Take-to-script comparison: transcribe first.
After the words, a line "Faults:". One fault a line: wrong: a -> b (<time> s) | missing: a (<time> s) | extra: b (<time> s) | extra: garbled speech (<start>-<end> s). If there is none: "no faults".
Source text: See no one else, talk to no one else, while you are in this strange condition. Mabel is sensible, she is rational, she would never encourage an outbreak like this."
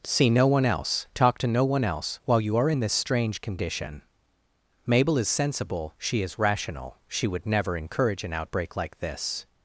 See no one else, talk to no one else, while you are in this strange condition. Mabel is sensible, she is rational, she would never encourage an outbreak like this."
Faults:
no faults